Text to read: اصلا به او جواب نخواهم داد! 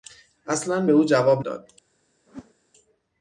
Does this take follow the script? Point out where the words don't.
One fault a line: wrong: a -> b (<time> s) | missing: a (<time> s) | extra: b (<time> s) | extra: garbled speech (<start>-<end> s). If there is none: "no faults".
missing: نخواهم (1.4 s)